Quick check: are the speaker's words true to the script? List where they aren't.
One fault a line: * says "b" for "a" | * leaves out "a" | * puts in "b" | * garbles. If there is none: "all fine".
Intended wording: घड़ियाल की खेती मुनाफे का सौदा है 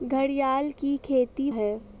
* leaves out "मुनाफे का सौदा"